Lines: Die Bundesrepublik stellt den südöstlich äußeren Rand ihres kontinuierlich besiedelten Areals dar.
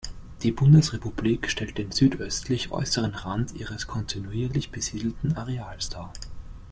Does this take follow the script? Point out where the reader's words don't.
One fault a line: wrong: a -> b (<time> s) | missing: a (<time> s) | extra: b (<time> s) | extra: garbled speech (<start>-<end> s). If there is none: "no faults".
no faults